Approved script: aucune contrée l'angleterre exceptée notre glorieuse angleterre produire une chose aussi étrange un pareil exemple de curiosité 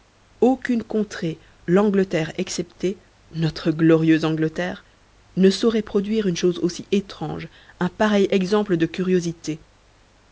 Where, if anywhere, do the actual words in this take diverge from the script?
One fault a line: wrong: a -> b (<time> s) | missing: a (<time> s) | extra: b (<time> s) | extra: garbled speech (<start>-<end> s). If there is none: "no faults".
extra: ne saurait (5.4 s)